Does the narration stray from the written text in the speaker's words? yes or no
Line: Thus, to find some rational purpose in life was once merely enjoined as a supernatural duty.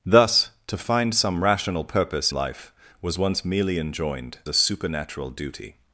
yes